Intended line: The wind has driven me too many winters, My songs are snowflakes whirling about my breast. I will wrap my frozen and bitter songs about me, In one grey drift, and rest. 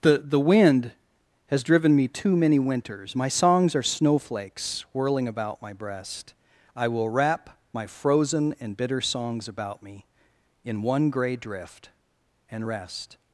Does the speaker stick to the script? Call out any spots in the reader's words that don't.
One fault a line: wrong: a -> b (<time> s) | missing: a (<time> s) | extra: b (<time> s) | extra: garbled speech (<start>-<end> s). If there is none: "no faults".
extra: the (0.2 s)